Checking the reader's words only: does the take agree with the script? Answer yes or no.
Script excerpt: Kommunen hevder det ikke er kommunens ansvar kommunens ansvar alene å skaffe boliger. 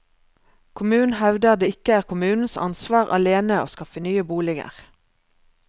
no